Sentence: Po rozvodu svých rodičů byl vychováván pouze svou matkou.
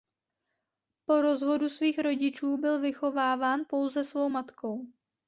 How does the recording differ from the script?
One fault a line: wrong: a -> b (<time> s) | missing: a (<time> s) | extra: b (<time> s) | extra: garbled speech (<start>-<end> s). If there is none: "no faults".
no faults